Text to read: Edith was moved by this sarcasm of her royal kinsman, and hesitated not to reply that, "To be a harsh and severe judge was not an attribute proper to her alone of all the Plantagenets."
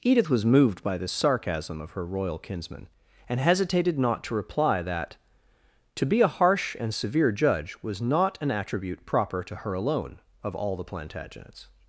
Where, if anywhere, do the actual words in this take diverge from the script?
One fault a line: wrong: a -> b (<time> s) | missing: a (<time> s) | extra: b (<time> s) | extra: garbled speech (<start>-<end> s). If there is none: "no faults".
no faults